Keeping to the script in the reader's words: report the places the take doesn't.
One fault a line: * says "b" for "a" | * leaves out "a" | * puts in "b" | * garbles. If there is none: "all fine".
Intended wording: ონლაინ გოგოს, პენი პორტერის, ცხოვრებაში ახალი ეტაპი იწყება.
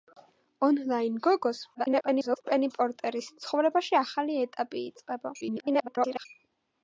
* garbles
* garbles